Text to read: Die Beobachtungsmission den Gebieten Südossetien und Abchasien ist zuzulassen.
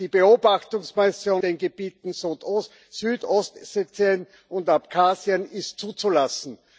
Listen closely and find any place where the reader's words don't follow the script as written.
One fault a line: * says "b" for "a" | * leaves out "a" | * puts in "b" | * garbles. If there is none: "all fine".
all fine